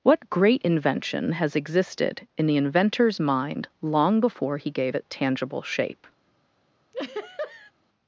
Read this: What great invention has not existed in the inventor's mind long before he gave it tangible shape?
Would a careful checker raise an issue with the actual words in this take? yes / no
yes